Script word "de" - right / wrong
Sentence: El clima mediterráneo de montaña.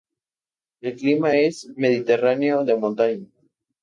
right